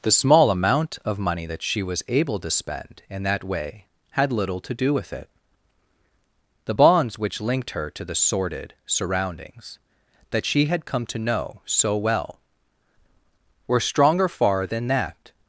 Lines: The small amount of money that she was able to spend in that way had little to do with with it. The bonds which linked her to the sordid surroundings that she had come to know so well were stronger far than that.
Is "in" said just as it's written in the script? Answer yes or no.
yes